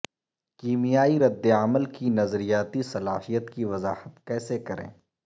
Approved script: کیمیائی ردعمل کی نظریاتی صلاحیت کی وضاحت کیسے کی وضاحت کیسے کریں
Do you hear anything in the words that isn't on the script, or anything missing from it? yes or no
yes